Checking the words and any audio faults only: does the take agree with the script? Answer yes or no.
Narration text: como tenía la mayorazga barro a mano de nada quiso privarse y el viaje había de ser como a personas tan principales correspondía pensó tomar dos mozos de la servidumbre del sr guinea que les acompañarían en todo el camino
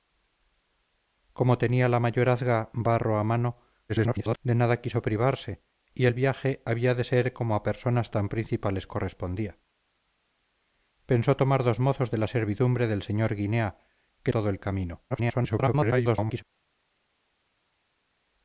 no